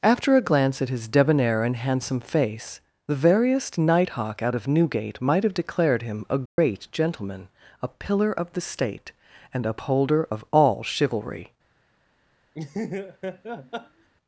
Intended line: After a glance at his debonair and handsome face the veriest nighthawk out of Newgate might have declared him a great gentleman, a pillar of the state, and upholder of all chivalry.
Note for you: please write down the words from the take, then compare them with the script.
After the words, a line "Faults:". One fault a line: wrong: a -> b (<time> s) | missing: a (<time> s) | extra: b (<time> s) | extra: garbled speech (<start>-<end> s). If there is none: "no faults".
After a glance at his debonair and handsome face the veriest nighthawk out of Newgate might have declared him a great gentleman, a pillar of the state, and upholder of all chivalry.
Faults:
no faults